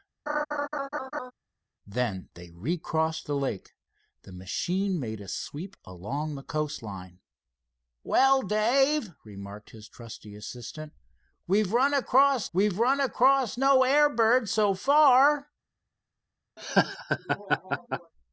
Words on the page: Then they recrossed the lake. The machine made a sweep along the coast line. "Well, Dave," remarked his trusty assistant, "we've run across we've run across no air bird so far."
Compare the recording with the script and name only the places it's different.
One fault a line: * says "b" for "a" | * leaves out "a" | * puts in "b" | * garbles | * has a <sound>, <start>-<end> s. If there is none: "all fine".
* has a laugh, 0.3-1.3 s
* has a laugh, 16.6-18.1 s